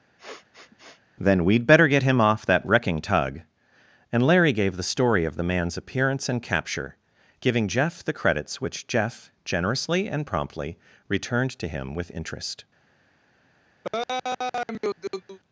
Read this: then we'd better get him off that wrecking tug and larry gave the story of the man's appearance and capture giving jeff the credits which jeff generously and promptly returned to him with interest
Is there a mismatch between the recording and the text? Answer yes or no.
no